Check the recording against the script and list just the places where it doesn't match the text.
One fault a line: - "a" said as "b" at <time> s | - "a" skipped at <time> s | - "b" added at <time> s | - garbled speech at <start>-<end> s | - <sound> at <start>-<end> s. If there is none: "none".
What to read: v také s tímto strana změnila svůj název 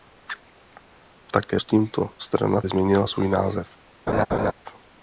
- laugh at 4.1-4.5 s